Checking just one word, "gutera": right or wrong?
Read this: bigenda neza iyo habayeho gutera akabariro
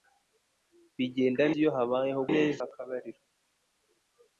wrong